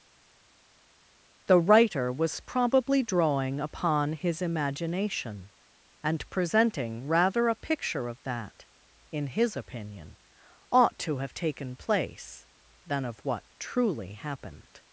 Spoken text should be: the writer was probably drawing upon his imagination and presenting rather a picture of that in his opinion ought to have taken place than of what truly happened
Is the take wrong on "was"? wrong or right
right